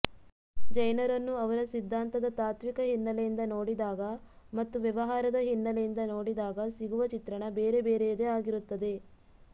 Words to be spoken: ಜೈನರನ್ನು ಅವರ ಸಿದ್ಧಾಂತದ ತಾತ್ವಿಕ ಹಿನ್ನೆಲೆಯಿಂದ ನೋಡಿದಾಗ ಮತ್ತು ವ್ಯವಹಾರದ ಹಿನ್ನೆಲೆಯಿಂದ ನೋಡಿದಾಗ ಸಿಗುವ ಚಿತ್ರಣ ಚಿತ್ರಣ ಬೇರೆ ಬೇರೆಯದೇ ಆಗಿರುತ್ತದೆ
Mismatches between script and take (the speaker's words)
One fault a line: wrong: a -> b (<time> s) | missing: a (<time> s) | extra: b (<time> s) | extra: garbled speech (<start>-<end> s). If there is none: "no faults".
missing: ಚಿತ್ರಣ (7.4 s)